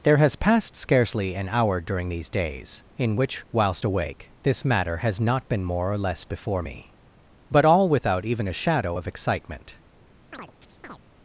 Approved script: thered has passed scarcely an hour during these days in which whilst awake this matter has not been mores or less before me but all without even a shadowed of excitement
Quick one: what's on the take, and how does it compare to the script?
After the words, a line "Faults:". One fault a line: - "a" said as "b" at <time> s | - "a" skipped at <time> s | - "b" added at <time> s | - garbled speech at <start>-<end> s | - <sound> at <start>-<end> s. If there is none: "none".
there has passed scarcely an hour during these days in which whilst awake this matter has not been more or less before me but all without even a shadow of excitement
Faults:
- "thered" said as "there" at 0.0 s
- "mores" said as "more" at 5.6 s
- "shadowed" said as "shadow" at 8.5 s
- chirp at 10.3-11.0 s